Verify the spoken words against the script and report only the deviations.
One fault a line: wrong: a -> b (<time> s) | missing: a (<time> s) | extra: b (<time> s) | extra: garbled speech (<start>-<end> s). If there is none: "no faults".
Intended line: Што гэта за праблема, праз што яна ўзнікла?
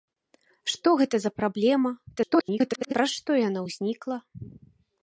extra: garbled speech (2.2-2.9 s)